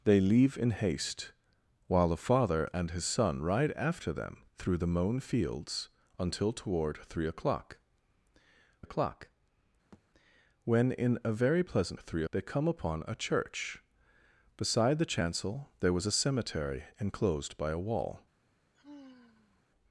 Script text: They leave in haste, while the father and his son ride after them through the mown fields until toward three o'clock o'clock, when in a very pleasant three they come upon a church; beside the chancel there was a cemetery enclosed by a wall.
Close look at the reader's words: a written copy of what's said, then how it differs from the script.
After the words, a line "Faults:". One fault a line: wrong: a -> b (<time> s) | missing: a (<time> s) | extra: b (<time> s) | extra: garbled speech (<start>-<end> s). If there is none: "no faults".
They leave in haste, while the father and his son ride after them through the mown fields until toward three o'clock o'clock, when in a very pleasant three they come upon a church; beside the chancel there was a cemetery enclosed by a wall.
Faults:
no faults